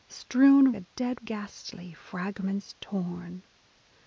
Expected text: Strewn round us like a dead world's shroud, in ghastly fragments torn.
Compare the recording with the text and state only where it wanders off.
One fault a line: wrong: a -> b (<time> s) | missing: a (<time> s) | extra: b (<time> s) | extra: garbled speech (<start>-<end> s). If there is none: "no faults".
missing: round us like (0.7 s)
missing: world's shroud in (1.3 s)